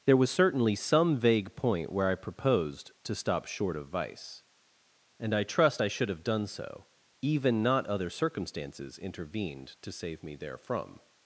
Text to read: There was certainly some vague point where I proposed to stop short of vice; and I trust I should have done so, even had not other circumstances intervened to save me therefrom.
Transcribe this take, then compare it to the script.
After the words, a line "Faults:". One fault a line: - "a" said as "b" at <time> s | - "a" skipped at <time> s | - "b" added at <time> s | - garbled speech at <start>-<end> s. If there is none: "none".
There was certainly some vague point where I proposed to stop short of vice; and I trust I should have done so, even not other circumstances intervened to save me therefrom.
Faults:
- "had" skipped at 7.6 s